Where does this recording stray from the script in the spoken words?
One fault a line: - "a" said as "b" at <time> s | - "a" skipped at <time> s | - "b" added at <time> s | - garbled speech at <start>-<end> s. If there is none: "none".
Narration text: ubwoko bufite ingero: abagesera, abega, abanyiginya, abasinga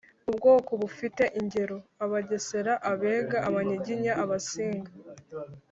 none